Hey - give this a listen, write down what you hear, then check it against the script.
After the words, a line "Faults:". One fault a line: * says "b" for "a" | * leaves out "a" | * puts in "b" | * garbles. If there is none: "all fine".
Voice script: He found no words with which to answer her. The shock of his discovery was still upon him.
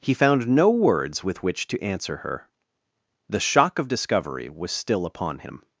He found no words with which to answer her. The shock of discovery was still upon him.
Faults:
* leaves out "his"